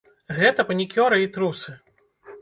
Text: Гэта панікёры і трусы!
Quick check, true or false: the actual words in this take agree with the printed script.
true